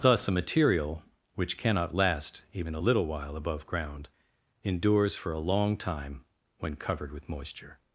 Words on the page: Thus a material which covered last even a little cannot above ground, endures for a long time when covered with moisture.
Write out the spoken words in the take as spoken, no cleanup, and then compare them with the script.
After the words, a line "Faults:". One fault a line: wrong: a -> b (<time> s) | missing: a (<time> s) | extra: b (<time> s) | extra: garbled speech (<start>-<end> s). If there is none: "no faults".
Thus a material which cannot last even a little while above ground, endures for a long time when covered with moisture.
Faults:
wrong: covered -> cannot (1.6 s)
wrong: cannot -> while (3.1 s)